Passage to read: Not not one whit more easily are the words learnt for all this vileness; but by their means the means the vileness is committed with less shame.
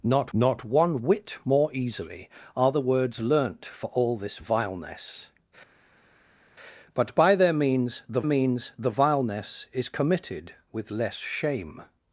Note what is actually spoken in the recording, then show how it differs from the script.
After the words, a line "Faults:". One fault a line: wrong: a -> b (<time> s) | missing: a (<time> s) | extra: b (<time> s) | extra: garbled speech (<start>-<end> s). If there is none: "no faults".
Not not one whit more easily are the words learnt for all this vileness; but by their means the means the vileness is committed with less shame.
Faults:
no faults